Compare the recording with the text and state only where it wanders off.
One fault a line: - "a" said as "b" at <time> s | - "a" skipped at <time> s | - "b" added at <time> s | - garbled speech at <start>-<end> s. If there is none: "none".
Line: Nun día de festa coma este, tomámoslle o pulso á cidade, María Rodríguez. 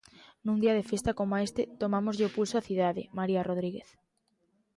none